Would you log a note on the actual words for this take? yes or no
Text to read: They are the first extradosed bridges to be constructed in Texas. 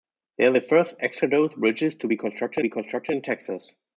yes